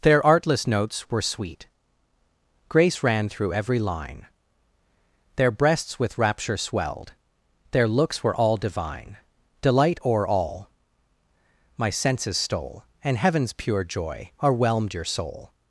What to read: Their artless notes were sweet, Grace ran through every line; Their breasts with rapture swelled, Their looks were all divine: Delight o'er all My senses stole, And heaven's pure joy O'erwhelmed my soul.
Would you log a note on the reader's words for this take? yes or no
yes